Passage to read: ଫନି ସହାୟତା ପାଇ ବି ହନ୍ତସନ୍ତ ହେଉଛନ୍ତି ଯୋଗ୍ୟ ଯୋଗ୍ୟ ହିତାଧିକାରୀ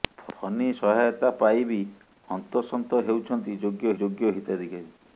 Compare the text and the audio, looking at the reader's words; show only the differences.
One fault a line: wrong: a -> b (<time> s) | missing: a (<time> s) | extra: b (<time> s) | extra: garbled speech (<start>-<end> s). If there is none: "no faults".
no faults